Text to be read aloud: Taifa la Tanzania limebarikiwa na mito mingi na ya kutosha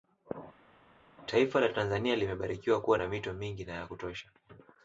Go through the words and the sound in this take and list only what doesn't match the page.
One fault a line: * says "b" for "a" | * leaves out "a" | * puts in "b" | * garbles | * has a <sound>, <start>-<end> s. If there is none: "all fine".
* puts in "kuwa"